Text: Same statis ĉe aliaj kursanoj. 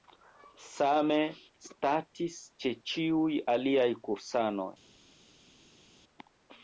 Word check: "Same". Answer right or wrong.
right